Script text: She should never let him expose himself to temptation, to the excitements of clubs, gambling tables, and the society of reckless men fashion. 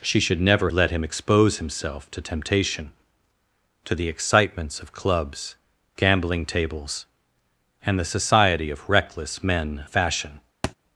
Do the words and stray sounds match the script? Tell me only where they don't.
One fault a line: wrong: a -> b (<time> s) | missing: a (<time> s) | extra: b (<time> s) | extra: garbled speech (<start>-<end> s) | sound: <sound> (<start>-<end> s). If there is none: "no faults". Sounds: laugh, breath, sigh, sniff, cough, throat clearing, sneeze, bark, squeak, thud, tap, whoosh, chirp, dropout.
sound: thud (10.6-10.7 s)